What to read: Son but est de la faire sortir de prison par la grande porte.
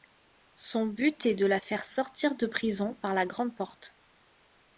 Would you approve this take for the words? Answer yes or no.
yes